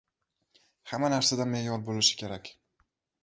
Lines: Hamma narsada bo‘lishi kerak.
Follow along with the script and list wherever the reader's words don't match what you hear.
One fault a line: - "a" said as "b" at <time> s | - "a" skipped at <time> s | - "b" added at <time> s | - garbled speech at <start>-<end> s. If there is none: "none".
- "me'yor" added at 1.5 s